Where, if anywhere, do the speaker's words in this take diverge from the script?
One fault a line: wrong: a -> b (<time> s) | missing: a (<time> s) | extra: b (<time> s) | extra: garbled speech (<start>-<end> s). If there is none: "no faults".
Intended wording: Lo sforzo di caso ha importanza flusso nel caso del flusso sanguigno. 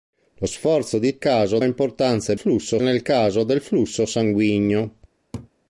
no faults